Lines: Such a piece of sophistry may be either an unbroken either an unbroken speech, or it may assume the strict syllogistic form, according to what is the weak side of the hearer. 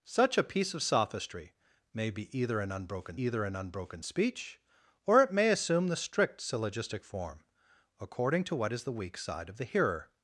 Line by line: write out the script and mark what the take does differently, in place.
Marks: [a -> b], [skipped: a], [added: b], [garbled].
Such a piece of sophistry may be either an unbroken either an unbroken speech, or it may assume the strict syllogistic form, according to what is the weak side of the hearer.